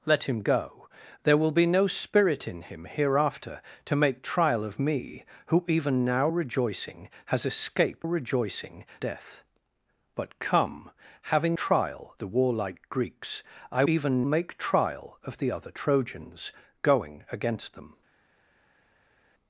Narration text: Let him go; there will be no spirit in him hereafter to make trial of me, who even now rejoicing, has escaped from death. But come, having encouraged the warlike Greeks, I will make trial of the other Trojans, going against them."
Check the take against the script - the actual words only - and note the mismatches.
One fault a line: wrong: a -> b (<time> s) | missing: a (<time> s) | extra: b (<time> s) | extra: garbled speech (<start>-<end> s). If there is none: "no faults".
wrong: from -> rejoicing (8.0 s)
wrong: encouraged -> trial (11.5 s)
wrong: will -> even (13.9 s)